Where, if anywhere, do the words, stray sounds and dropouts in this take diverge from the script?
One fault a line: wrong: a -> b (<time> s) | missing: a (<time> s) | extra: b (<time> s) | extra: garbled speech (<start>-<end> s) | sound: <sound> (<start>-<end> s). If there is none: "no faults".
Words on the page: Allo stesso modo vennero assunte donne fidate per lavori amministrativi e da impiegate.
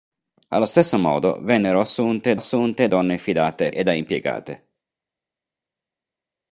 extra: assunte (2.3 s)
missing: per lavori amministrativi (3.7 s)